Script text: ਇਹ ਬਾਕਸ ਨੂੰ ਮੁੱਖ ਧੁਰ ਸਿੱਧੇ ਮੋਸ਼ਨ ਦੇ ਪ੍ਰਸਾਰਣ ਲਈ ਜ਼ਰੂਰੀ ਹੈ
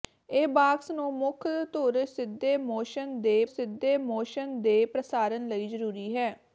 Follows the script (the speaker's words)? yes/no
no